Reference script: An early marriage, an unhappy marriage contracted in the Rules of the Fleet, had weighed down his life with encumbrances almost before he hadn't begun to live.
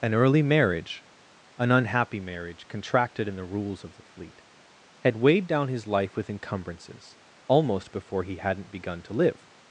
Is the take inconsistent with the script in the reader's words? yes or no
no